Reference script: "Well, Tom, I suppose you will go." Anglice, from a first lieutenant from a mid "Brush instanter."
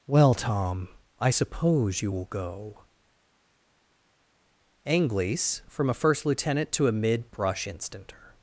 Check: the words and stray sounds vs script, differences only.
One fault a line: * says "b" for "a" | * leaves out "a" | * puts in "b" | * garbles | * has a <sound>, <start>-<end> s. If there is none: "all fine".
* says "to" for "from"